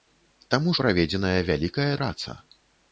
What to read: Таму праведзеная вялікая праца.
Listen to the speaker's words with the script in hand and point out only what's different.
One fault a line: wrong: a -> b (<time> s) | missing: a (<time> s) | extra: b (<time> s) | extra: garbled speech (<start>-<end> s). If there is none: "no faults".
no faults